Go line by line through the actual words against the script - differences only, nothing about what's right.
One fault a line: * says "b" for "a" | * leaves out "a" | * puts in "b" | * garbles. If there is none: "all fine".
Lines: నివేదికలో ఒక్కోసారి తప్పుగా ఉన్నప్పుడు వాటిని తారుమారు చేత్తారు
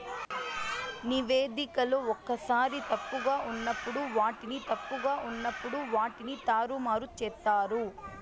* puts in "తప్పుగా ఉన్నప్పుడు వాటిని"